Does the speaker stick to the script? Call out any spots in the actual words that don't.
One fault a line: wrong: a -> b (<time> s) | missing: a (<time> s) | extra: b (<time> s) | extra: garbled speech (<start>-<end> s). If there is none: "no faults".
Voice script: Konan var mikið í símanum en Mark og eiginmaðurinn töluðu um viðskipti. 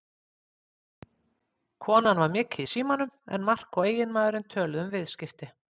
no faults